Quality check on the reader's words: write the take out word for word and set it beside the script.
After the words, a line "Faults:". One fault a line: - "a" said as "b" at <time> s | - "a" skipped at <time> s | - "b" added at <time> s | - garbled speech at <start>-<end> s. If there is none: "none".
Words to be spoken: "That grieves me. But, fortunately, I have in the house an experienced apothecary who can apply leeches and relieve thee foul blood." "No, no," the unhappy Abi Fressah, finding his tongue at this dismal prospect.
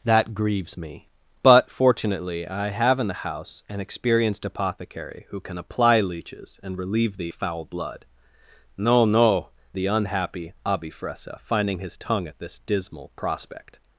"That grieves me. But, fortunately, I have in the house an experienced apothecary who can apply leeches and relieve thee foul blood." "No, no," the unhappy Abi Fressah, finding his tongue at this dismal prospect.
Faults:
none